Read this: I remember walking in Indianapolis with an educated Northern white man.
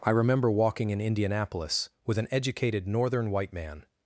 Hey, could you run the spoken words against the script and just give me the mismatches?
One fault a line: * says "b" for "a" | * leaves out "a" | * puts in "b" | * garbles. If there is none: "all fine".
all fine